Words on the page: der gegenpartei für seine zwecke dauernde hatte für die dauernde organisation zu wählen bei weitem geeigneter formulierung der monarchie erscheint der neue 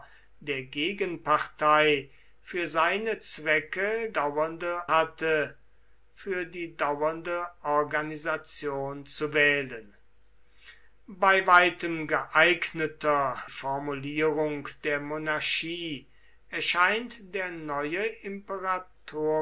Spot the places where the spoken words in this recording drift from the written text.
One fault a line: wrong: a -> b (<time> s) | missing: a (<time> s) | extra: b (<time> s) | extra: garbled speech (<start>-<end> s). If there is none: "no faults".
no faults